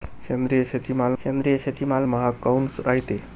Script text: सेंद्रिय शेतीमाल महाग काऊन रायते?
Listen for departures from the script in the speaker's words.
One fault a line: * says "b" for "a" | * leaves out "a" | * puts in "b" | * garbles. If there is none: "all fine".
* puts in "सेंद्रिय शेतीमाल"